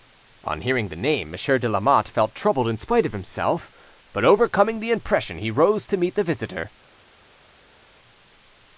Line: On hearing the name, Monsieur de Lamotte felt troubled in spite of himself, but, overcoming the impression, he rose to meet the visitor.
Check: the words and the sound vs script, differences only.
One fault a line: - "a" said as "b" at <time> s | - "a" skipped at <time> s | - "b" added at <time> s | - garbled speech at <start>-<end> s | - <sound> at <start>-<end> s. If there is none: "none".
none